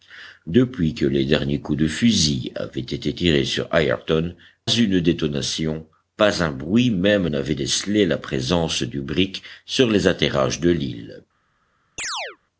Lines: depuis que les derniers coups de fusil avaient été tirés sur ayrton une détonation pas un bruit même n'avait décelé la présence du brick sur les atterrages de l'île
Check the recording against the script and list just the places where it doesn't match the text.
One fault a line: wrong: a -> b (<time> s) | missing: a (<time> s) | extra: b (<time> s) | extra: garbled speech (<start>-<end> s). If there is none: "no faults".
no faults